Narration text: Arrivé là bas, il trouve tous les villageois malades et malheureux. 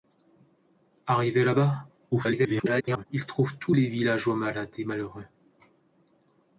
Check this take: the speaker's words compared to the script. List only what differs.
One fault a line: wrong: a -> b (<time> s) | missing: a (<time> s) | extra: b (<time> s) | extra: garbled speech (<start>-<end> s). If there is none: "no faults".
extra: garbled speech (2.1-3.1 s)